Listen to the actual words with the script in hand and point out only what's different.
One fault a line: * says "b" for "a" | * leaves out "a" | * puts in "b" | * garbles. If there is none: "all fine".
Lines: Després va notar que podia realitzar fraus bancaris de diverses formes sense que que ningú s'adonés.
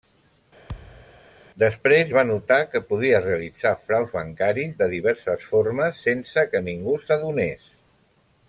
* leaves out "que"